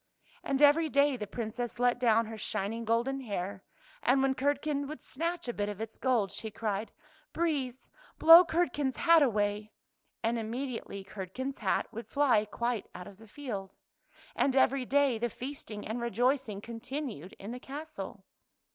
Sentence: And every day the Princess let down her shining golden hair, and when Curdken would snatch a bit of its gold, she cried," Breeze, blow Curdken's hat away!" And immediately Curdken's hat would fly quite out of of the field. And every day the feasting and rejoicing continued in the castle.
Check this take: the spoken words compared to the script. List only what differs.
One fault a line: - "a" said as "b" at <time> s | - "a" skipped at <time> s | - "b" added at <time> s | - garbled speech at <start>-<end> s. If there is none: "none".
- "of" skipped at 13.2 s